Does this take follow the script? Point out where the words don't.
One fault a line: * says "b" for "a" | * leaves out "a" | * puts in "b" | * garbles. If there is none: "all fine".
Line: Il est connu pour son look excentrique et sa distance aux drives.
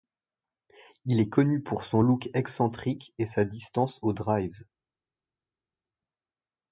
all fine